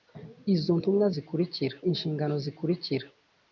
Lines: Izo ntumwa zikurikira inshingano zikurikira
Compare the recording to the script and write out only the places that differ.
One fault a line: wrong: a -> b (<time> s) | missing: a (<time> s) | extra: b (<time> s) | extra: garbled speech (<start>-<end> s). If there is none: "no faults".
no faults